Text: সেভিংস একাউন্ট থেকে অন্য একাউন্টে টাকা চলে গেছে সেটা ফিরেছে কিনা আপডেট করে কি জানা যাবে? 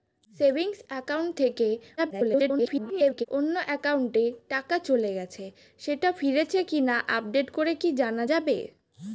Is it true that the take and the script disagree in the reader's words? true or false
true